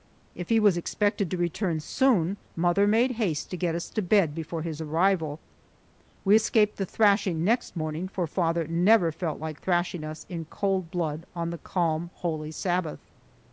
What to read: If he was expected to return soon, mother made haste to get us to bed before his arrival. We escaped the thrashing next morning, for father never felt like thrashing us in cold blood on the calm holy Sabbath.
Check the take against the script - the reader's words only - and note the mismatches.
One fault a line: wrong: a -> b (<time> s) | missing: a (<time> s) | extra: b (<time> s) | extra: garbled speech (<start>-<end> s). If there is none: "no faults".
no faults